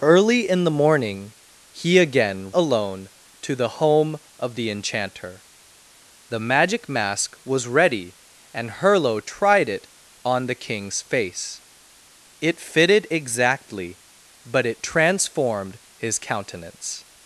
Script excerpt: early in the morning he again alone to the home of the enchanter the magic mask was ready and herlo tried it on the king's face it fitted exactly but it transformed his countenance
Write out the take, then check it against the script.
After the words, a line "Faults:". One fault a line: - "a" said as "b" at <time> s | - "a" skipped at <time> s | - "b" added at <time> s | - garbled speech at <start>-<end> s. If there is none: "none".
early in the morning he again alone to the home of the enchanter the magic mask was ready and herlo tried it on the king's face it fitted exactly but it transformed his countenance
Faults:
none